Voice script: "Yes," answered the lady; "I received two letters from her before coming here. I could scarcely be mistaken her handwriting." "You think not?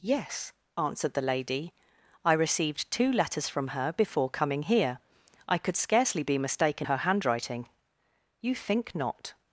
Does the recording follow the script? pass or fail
pass